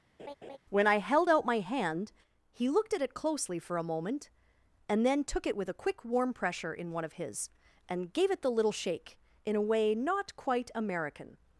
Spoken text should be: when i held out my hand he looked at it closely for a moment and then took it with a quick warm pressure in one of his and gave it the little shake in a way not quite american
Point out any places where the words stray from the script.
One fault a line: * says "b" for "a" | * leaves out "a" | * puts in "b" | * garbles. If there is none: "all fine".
all fine